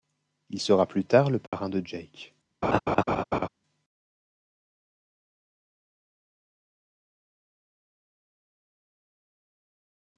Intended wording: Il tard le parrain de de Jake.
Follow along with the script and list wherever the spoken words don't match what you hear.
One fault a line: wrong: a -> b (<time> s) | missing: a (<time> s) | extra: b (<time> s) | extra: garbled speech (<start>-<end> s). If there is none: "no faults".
extra: sera plus (0.6 s)
missing: de (1.8 s)